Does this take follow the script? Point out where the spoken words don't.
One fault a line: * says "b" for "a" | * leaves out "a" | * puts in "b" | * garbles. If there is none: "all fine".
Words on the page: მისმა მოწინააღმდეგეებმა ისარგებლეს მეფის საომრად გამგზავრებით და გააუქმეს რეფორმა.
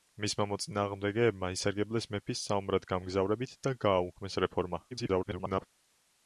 * garbles